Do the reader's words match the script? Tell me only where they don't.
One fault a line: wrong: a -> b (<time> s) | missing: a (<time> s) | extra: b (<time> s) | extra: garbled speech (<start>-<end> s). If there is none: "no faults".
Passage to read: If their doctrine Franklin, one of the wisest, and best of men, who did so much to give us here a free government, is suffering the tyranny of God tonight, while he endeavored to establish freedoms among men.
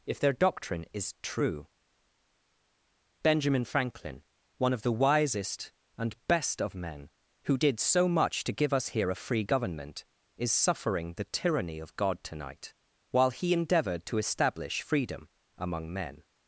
extra: is true Benjamin (0.9 s)
wrong: freedoms -> freedom (14.8 s)